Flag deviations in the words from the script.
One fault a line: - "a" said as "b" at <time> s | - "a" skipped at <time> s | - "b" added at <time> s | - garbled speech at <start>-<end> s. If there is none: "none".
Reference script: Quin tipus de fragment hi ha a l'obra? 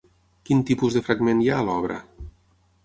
none